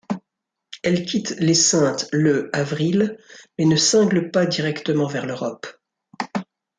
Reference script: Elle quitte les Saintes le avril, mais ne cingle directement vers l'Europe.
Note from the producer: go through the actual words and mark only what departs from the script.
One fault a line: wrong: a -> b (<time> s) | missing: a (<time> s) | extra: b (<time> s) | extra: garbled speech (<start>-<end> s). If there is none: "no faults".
extra: pas (4.3 s)